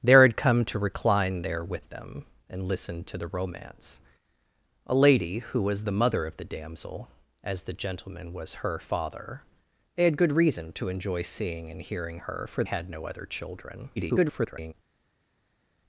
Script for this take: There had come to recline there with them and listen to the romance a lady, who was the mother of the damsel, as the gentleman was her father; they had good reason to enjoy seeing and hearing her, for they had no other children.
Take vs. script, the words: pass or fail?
fail